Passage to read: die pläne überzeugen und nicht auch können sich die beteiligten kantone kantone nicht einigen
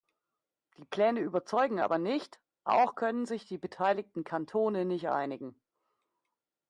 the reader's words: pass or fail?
fail